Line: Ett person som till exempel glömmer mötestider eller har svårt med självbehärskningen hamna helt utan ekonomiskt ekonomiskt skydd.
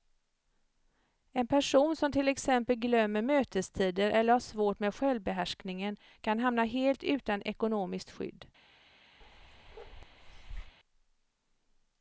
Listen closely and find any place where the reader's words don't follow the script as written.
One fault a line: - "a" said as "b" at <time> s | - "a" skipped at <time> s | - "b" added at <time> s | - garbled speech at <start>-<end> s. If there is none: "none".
- "Ett" said as "En" at 1.3 s
- "kan" added at 6.2 s
- "ekonomiskt" skipped at 8.1 s